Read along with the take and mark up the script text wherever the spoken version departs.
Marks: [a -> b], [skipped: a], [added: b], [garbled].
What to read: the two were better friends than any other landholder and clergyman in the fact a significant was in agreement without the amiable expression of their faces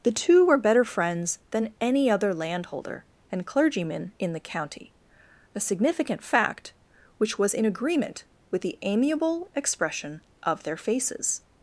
the two were better friends than any other landholder and clergyman in the [fact -> county] a significant [added: fact which] was in agreement [without -> with] the amiable expression of their faces